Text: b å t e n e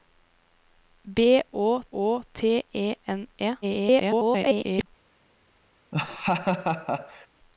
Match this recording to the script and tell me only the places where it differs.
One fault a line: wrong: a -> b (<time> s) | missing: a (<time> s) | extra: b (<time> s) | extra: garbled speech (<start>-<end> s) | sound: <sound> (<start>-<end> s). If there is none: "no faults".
extra: å (1.9 s)
extra: garbled speech (3.6-4.9 s)
sound: laugh (5.9-7.3 s)